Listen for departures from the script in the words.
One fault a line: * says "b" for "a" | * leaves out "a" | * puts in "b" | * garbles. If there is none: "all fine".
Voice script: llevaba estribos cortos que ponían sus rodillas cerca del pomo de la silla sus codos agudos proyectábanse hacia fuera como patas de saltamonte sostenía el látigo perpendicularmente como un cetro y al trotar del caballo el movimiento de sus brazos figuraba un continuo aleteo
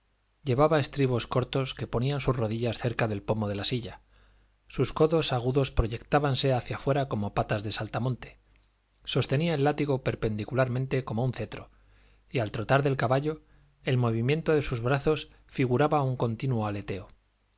all fine